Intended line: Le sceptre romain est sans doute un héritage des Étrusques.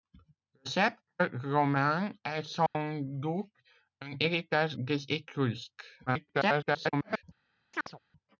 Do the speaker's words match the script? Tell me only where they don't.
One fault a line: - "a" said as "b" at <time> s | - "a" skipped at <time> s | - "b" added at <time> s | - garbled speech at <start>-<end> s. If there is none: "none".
- garbled speech at 6.1-7.2 s